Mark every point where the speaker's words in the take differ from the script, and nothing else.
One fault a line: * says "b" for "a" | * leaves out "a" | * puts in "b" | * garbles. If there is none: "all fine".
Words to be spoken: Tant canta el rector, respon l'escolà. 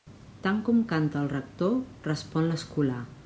* puts in "com"